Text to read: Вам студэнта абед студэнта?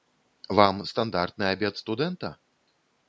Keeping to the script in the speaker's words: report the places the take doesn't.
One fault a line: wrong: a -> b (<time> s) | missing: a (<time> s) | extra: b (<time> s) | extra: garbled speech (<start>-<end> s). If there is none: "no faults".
wrong: студэнта -> стандартны (0.9 s)